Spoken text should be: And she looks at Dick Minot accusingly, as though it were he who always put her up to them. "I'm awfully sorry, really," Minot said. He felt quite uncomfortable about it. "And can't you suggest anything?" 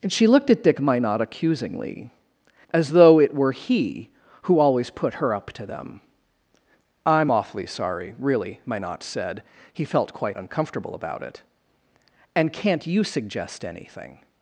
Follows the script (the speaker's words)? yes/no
no